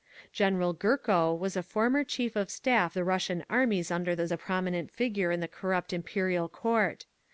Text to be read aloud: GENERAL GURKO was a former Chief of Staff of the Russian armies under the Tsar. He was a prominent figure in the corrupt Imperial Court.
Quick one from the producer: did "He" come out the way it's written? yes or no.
no